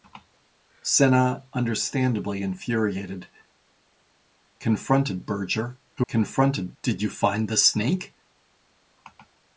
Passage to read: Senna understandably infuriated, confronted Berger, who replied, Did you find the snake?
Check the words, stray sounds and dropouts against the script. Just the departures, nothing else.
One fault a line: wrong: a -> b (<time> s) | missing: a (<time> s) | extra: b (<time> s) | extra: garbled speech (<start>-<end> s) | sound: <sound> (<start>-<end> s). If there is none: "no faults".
wrong: replied -> confronted (6.1 s)